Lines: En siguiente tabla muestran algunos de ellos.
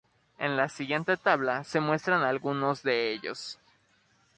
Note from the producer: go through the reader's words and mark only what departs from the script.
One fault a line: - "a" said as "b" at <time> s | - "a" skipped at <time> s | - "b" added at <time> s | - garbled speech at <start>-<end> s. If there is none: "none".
- "la" added at 0.6 s
- "se" added at 1.6 s